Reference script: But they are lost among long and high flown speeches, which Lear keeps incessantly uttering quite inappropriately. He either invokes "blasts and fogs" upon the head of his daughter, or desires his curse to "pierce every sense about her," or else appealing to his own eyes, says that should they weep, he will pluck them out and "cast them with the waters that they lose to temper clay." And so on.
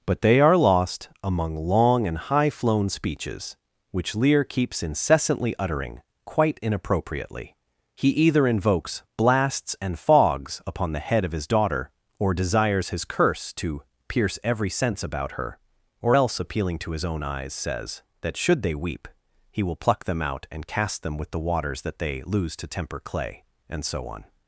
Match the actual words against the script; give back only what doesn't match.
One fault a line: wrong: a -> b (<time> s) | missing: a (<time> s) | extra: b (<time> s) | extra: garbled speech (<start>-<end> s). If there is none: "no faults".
no faults